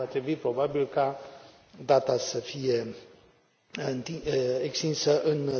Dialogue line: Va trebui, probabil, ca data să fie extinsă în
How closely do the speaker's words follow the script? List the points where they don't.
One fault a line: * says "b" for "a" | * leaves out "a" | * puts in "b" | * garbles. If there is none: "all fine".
all fine